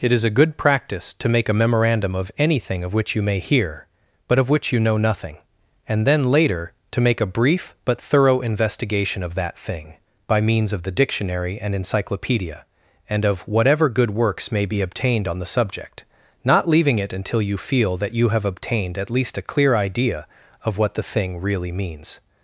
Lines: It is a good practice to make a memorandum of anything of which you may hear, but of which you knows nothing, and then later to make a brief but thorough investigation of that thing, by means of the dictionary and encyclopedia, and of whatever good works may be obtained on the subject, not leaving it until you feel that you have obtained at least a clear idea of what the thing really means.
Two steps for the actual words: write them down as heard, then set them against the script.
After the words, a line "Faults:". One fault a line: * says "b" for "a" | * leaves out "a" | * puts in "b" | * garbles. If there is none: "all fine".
It is a good practice to make a memorandum of anything of which you may hear, but of which you know nothing, and then later to make a brief but thorough investigation of that thing, by means of the dictionary and encyclopedia, and of whatever good works may be obtained on the subject, not leaving it until you feel that you have obtained at least a clear idea of what the thing really means.
Faults:
* says "know" for "knows"